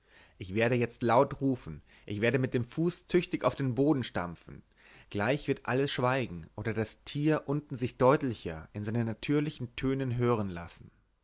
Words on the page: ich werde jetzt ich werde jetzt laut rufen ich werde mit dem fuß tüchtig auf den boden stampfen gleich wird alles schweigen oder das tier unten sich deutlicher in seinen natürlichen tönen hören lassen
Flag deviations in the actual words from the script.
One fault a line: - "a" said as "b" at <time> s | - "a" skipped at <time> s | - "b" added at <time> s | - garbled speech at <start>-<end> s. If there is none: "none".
- "ich werde jetzt" skipped at 1.0 s